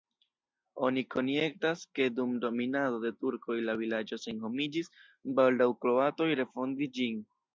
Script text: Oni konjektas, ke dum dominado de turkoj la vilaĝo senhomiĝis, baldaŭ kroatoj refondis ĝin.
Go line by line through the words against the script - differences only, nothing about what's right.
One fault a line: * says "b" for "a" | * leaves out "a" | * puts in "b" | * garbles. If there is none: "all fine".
all fine